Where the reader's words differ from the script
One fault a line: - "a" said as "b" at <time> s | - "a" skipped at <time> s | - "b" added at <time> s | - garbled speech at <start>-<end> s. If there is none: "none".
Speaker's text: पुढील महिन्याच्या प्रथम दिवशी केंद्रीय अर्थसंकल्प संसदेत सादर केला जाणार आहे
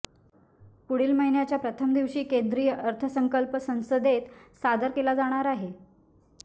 none